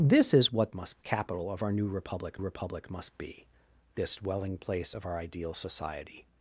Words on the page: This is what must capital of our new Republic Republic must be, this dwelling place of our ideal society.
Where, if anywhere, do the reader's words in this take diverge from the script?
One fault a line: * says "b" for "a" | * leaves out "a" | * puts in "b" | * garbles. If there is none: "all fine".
all fine